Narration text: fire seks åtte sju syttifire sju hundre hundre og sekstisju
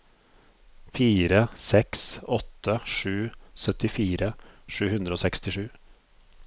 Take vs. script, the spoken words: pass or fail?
fail